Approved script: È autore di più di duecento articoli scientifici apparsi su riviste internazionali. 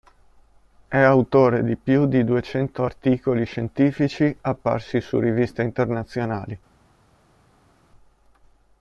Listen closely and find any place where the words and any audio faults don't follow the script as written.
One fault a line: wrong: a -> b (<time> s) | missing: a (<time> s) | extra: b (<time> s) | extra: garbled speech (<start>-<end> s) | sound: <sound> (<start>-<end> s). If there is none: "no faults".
no faults